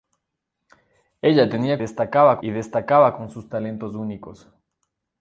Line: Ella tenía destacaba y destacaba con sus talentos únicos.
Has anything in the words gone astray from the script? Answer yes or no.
no